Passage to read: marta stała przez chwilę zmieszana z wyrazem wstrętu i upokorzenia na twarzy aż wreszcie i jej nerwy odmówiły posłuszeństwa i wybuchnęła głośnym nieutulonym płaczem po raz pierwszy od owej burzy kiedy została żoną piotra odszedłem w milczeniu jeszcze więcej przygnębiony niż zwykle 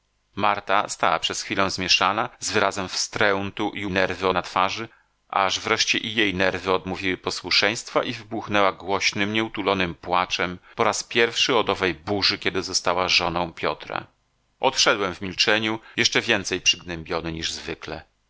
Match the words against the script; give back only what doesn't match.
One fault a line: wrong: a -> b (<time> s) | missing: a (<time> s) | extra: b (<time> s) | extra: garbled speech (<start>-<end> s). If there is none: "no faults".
wrong: upokorzenia -> nerwy (3.9 s)